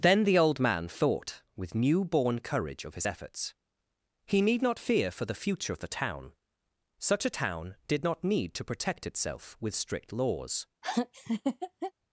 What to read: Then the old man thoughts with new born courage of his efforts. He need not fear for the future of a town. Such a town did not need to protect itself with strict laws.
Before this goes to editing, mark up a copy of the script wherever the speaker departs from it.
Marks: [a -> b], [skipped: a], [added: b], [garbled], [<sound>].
Then the old man [thoughts -> thought] with new born courage of his efforts. He need not fear for the future of [a -> the] town. Such a town did not need to protect itself with strict laws. [laugh]